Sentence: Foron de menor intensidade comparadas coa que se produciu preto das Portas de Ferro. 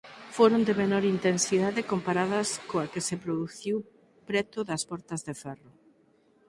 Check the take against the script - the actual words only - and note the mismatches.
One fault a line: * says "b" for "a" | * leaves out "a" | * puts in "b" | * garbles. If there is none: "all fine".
all fine